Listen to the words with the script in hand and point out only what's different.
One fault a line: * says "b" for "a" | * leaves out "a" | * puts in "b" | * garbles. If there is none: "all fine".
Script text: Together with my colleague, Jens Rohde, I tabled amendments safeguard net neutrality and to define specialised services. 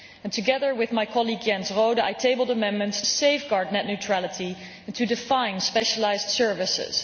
all fine